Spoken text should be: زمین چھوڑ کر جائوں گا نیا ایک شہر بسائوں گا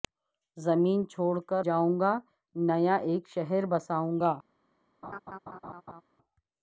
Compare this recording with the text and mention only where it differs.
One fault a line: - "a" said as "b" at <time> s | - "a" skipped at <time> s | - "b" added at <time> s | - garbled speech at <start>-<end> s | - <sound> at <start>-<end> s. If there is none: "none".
- laugh at 5.0-6.0 s